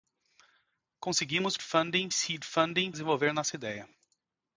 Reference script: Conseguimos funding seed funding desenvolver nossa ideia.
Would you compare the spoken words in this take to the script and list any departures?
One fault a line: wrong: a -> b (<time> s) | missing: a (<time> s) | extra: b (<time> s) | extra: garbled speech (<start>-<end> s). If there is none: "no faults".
no faults